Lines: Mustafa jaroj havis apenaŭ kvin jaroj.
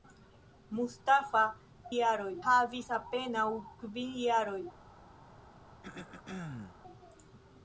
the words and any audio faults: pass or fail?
fail